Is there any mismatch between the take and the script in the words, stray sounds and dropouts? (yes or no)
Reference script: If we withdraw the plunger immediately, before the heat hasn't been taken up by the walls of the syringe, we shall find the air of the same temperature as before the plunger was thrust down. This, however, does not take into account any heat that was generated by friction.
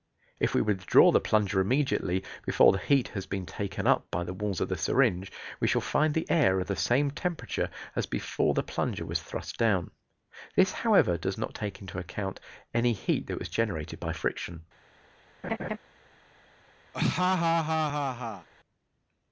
yes